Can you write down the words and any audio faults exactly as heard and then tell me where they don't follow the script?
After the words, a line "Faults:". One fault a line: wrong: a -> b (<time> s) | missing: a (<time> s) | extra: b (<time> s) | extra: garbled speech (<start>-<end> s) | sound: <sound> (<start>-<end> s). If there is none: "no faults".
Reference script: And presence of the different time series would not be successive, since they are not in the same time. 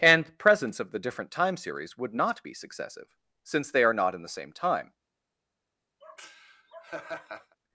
And presence of the different time series would not be successive, since they are not in the same time.
Faults:
sound: laugh (6.0-7.6 s)